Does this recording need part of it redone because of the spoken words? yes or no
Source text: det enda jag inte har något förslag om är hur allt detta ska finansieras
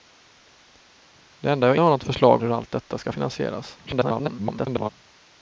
yes